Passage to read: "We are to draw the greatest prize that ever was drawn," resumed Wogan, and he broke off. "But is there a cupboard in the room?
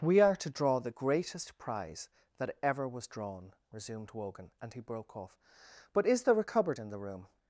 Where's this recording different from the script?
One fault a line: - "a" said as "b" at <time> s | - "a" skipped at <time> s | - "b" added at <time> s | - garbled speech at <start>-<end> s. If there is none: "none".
none